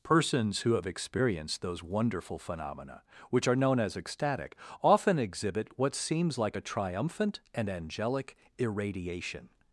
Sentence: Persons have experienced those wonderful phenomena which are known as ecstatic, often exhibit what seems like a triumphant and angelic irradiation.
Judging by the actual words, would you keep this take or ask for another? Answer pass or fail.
fail